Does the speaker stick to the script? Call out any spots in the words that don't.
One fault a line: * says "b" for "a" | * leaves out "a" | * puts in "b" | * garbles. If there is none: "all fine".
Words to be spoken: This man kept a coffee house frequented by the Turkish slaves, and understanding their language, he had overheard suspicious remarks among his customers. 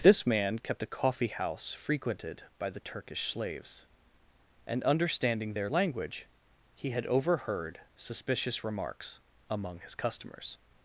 all fine